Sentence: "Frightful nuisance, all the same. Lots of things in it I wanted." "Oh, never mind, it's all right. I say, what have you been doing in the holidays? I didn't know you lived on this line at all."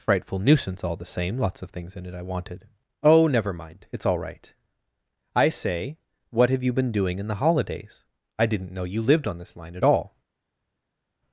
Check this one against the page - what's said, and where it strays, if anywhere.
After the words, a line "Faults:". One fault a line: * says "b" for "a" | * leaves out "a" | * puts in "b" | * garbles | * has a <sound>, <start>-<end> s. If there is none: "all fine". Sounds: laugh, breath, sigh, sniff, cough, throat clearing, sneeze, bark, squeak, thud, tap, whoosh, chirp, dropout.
"Frightful nuisance, all the same. Lots of things in it I wanted." "Oh, never mind, it's all right. I say, what have you been doing in the holidays? I didn't know you lived on this line at all."
Faults:
all fine